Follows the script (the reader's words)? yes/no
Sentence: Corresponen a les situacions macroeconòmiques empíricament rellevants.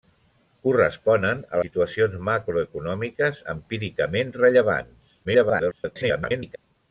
no